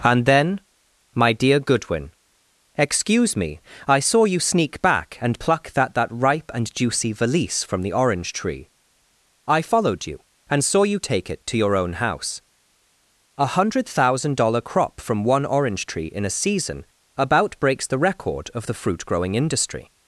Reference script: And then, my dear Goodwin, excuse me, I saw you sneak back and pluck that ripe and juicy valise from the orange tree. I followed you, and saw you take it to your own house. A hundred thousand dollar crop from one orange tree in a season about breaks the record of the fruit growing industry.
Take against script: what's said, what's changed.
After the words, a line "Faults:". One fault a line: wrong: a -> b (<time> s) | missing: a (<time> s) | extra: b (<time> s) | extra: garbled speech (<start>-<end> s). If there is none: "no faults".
And then, my dear Goodwin, excuse me, I saw you sneak back and pluck that that ripe and juicy valise from the orange tree. I followed you, and saw you take it to your own house. A hundred thousand dollar crop from one orange tree in a season about breaks the record of the fruit growing industry.
Faults:
extra: that (5.9 s)